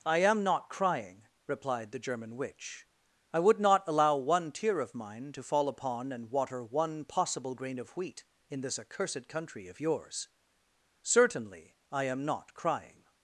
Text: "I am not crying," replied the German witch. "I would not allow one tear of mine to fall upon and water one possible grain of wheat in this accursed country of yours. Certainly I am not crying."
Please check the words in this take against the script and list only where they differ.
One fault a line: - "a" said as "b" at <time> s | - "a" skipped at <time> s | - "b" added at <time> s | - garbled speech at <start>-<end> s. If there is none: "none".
none